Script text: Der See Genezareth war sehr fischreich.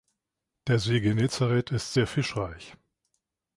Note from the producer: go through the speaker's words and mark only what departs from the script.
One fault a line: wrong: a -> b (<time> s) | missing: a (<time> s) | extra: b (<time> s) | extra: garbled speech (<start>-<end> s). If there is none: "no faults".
wrong: war -> ist (1.7 s)